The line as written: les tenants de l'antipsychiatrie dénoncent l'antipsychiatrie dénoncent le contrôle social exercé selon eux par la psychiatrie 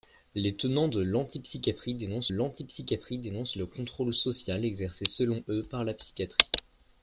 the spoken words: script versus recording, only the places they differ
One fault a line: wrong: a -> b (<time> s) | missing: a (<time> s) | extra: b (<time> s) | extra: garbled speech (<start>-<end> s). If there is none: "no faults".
no faults